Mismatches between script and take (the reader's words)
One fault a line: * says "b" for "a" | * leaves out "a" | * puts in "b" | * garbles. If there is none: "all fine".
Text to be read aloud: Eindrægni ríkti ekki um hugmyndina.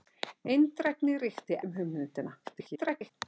* leaves out "ekki"
* garbles